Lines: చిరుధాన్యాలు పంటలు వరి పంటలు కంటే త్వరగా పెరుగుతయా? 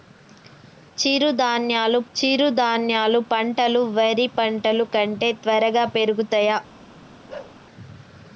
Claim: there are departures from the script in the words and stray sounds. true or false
true